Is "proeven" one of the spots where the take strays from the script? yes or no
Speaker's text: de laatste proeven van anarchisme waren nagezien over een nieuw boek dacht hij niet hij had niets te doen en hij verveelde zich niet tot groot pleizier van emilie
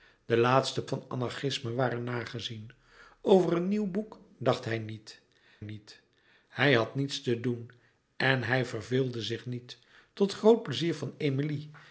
yes